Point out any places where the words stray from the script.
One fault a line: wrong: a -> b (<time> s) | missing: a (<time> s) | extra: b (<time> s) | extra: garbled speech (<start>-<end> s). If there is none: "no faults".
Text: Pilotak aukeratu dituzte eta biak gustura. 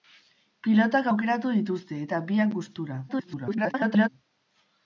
extra: garbled speech (3.1-4.1 s)